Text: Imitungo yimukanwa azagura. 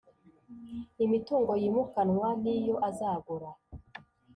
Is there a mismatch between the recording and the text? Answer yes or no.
yes